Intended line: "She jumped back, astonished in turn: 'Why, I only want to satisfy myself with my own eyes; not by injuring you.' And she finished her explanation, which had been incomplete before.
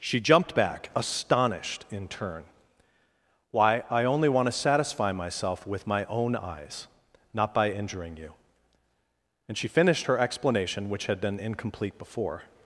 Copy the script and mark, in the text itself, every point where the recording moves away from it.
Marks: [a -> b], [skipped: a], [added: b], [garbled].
"She jumped back, astonished in turn: 'Why, I only want to satisfy myself with my own eyes; not by injuring you.' And she finished her explanation, which had been incomplete before.